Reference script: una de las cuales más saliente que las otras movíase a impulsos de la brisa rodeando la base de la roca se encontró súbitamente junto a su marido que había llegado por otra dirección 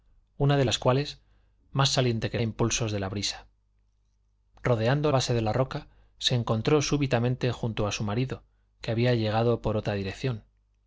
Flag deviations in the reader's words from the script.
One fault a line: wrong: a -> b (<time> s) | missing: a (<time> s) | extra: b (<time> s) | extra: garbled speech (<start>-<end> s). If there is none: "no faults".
missing: las otras movíase (2.4 s)
missing: la (5.1 s)